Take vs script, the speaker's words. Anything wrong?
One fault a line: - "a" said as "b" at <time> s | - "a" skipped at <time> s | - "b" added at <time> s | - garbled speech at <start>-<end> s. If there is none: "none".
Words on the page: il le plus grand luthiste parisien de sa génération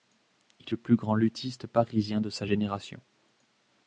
none